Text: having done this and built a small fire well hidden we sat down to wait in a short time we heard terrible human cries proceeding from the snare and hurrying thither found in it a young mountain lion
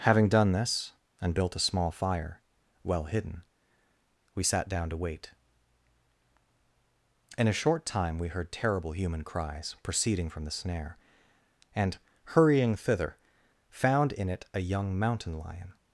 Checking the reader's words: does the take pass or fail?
pass